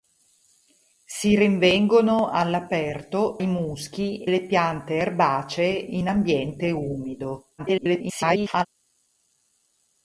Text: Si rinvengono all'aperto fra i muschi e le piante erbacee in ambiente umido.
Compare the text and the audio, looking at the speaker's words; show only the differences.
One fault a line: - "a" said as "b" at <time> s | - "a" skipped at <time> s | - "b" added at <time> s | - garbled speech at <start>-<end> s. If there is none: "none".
- "fra" skipped at 3.4 s
- "e" skipped at 4.3 s
- garbled speech at 7.6-8.7 s